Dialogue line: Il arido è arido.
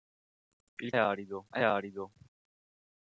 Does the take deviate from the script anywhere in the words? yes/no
no